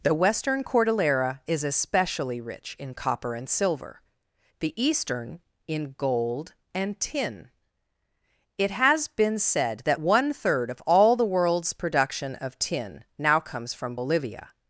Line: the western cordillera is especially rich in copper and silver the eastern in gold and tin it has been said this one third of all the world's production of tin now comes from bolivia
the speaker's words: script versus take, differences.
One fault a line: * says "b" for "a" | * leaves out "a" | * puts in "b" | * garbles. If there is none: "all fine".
* says "that" for "this"